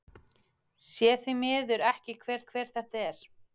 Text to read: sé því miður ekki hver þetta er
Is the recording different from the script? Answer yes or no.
yes